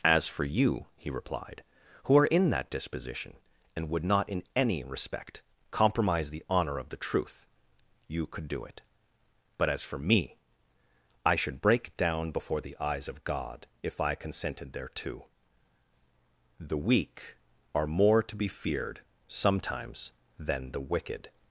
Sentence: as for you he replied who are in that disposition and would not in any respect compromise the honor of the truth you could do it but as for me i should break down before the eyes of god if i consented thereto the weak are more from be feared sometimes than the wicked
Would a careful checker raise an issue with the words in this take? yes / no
yes